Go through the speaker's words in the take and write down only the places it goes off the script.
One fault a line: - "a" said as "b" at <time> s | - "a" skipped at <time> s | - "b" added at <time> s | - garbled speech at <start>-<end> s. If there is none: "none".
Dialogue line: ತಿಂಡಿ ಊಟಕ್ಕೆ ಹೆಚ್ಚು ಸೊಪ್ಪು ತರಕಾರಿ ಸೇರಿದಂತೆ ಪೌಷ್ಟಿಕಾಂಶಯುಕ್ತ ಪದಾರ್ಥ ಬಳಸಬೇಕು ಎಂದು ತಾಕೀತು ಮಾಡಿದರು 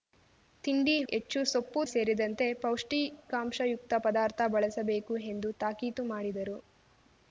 - "ಊಟಕ್ಕೆ" skipped at 0.9 s
- "ತರಕಾರಿ" skipped at 1.8 s